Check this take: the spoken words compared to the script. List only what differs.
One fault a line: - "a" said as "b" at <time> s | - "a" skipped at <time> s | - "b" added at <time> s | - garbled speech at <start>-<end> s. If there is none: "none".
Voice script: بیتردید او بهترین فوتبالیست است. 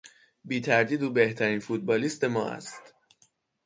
- "ما" added at 2.2 s